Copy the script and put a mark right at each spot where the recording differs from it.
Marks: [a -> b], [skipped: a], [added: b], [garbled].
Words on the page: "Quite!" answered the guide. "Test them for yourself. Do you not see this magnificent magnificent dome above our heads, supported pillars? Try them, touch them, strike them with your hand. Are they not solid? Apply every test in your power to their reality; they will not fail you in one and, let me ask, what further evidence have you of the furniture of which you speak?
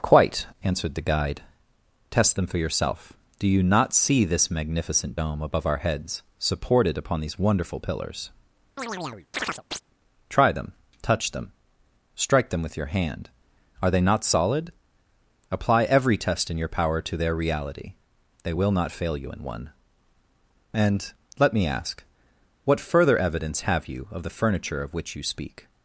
"Quite!" answered the guide. "Test them for yourself. Do you not see this magnificent [skipped: magnificent] dome above our heads, supported [added: upon these wonderful] pillars? Try them, touch them, strike them with your hand. Are they not solid? Apply every test in your power to their reality; they will not fail you in one and, let me ask, what further evidence have you of the furniture of which you speak?